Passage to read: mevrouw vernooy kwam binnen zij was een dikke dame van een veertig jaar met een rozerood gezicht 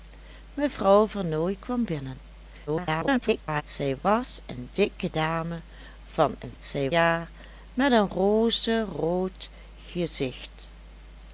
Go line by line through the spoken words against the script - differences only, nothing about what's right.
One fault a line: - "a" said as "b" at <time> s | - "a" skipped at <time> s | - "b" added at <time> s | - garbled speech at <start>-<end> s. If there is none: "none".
- garbled speech at 2.7-3.6 s
- "veertig" said as "zij" at 6.6 s